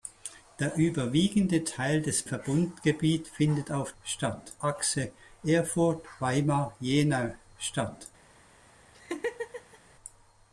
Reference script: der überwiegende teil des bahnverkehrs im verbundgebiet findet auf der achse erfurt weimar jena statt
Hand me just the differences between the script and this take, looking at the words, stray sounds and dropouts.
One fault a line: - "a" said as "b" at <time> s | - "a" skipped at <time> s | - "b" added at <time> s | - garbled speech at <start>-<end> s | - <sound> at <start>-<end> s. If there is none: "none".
- "bahnverkehrs im" skipped at 2.2 s
- "der" said as "statt" at 4.0 s
- laugh at 8.9-9.8 s